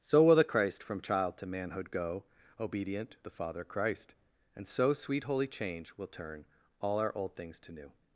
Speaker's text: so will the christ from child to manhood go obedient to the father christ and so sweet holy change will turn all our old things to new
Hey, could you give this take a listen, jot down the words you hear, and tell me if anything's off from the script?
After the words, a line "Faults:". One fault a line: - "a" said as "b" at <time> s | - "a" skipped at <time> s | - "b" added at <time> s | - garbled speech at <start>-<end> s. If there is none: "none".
so will the christ from child to manhood go obedient to the father christ and so sweet holy change will turn all our old things to new
Faults:
none